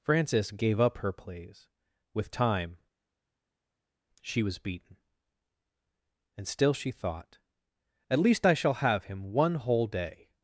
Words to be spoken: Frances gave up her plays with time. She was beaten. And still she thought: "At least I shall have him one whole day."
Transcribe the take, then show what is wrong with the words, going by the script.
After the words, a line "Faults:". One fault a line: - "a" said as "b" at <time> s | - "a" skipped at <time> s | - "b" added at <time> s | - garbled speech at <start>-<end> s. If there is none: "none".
Frances gave up her plays with time. She was beaten. And still she thought: "At least I shall have him one whole day."
Faults:
none